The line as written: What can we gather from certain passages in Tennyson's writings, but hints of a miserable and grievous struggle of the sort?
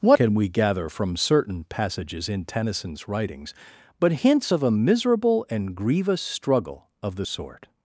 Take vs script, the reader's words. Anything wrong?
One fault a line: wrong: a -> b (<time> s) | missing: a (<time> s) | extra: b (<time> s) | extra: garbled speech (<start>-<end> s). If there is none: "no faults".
no faults